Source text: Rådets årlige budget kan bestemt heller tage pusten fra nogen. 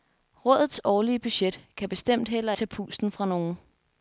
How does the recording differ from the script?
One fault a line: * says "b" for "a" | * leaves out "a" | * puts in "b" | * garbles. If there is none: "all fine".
all fine